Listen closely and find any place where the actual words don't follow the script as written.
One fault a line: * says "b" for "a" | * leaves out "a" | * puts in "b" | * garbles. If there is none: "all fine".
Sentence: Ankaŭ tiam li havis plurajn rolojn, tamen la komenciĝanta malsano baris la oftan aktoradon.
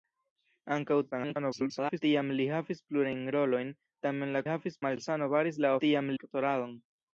* garbles
* says "havis" for "komenciĝanta"
* says "tiam" for "oftan"